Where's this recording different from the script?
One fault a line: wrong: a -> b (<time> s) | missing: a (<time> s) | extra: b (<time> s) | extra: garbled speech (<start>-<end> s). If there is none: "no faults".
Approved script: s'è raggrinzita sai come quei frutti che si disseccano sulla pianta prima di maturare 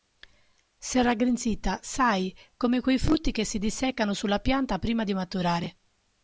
no faults